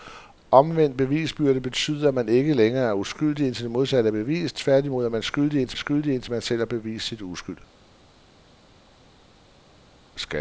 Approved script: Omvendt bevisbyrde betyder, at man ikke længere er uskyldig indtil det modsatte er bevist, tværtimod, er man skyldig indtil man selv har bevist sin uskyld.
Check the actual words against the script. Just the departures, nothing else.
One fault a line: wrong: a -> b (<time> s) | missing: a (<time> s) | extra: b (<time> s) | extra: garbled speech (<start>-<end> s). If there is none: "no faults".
extra: skyldig indtil (5.7 s)